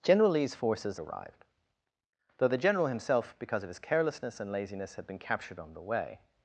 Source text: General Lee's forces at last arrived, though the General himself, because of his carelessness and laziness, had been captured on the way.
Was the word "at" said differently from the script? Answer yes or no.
yes